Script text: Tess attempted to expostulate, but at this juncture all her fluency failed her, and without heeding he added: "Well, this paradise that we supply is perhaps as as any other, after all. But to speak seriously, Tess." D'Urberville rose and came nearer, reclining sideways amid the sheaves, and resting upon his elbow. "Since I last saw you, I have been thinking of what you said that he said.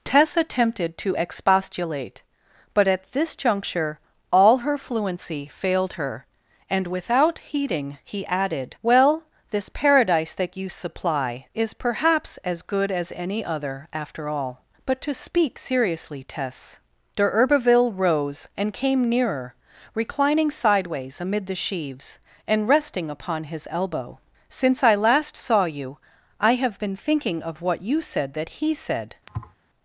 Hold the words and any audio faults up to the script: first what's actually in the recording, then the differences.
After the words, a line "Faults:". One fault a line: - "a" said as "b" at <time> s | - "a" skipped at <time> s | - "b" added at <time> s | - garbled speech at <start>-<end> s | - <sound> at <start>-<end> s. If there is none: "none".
Tess attempted to expostulate, but at this juncture all her fluency failed her, and without heeding he added: "Well, this paradise that you supply is perhaps as good as any other, after all. But to speak seriously, Tess." D'Urberville rose and came nearer, reclining sideways amid the sheaves, and resting upon his elbow. "Since I last saw you, I have been thinking of what you said that he said.
Faults:
- "we" said as "you" at 10.6 s
- "good" added at 12.6 s
- thud at 29.3-29.5 s